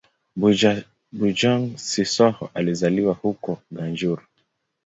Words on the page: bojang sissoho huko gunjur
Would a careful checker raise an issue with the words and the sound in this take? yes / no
yes